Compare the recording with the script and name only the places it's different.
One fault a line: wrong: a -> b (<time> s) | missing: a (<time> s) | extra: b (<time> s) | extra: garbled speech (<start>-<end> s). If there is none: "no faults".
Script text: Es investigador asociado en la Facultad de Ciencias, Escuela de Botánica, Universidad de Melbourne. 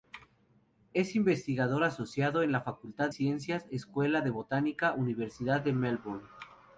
missing: de (3.1 s)